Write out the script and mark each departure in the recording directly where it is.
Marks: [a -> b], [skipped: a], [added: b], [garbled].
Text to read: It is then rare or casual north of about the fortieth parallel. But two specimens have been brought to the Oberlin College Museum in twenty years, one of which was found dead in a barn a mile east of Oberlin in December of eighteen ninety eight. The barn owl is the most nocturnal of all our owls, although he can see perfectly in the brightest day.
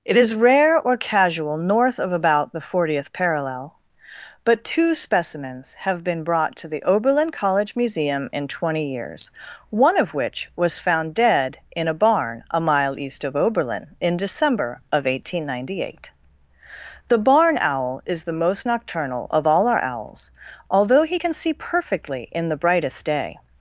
It is [skipped: then] rare or casual north of about the fortieth parallel. But two specimens have been brought to the Oberlin College Museum in twenty years, one of which was found dead in a barn a mile east of Oberlin in December of eighteen ninety eight. The barn owl is the most nocturnal of all our owls, although he can see perfectly in the brightest day.